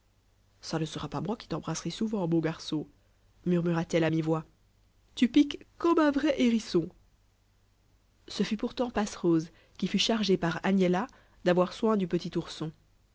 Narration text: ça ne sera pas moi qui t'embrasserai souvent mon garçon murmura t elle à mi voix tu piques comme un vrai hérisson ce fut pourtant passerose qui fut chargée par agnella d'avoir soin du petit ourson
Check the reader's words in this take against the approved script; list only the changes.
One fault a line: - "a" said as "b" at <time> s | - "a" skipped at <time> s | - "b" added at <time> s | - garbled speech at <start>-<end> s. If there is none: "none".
none